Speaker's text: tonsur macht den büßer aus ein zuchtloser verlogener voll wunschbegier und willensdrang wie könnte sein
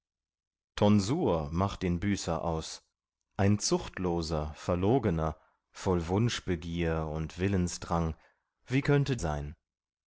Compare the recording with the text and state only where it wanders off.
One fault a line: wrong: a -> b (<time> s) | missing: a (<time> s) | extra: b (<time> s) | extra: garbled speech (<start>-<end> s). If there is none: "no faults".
no faults